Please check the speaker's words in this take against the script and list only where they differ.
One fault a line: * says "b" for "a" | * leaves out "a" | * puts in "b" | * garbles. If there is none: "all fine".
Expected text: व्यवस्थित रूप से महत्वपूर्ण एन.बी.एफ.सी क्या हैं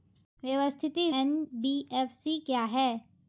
* leaves out "रूप से महत्वपूर्ण"